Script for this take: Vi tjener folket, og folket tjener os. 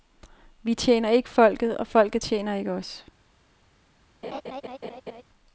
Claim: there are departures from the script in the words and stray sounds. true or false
true